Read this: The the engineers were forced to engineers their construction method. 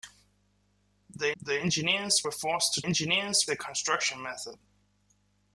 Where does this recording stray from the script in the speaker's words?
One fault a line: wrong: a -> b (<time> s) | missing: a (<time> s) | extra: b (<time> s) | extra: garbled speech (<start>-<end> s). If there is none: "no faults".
no faults